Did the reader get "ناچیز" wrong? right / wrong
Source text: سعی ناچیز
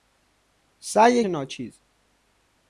right